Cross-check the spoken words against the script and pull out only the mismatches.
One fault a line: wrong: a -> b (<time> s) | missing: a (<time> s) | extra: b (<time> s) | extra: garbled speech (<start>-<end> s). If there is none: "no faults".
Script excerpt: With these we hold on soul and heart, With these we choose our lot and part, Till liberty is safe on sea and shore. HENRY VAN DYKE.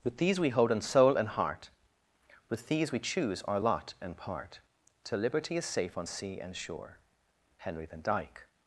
wrong: on -> in (0.7 s)